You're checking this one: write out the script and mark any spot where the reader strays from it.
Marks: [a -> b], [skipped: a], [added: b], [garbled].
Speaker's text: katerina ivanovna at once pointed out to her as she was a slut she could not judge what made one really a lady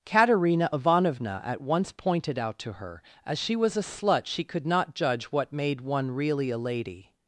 katerina ivanovna at once pointed out to her as she was a slut she could not judge what made one really a lady